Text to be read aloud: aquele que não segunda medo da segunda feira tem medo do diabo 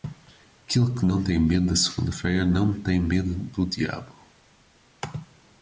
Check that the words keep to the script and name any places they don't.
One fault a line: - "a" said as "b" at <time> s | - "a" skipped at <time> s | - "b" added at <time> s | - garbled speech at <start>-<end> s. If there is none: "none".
- "segunda" said as "tem" at 1.2 s
- "não" added at 2.4 s